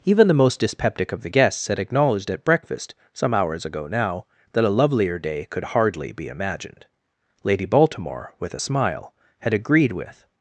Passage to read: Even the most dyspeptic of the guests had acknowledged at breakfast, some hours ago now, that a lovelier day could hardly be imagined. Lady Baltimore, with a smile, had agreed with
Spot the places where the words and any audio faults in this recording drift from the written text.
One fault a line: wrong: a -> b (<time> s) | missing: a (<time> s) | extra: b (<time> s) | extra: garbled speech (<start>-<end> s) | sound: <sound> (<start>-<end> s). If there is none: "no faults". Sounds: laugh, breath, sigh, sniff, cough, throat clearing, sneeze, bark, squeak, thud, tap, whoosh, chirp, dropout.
no faults